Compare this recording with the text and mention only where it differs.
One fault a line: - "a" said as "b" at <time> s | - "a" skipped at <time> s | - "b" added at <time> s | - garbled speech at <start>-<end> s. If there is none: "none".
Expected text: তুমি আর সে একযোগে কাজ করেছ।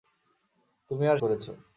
- "সে একযোগে কাজ" skipped at 1.2 s